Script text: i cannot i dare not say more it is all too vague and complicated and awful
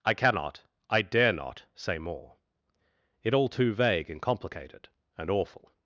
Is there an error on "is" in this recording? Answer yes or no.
yes